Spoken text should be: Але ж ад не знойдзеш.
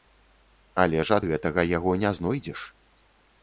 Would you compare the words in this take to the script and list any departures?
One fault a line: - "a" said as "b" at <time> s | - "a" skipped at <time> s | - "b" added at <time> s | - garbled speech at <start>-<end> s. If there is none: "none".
- "гэтага яго" added at 1.3 s